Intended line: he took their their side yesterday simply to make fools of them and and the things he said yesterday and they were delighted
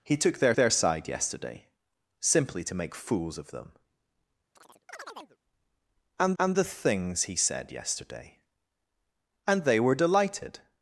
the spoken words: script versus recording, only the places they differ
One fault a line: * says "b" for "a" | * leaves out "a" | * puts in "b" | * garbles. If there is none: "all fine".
all fine